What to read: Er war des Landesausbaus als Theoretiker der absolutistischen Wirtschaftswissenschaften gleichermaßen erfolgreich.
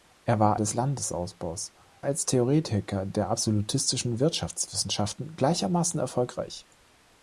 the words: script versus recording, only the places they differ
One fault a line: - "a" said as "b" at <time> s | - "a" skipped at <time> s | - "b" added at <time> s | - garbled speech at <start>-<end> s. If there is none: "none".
none